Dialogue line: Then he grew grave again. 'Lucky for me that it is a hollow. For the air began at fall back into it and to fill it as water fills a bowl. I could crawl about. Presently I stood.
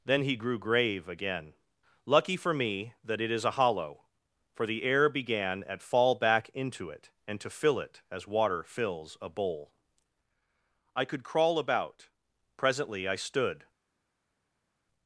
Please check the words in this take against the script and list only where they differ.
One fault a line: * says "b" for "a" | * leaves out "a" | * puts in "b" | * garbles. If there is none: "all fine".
all fine